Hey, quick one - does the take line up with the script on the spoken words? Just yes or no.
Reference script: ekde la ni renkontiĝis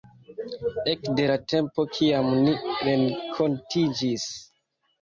no